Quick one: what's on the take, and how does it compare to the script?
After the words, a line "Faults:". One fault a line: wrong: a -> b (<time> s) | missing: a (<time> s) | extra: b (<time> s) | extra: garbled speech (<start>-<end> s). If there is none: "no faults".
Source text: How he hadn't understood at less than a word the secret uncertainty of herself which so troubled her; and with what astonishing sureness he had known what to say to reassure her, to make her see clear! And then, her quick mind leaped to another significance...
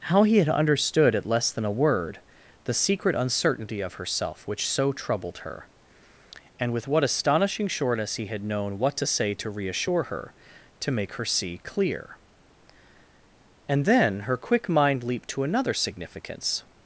How he had understood at less than a word the secret uncertainty of herself which so troubled her; and with what astonishing sureness he had known what to say to reassure her, to make her see clear! And then, her quick mind leaped to another significance...
Faults:
wrong: hadn't -> had (0.4 s)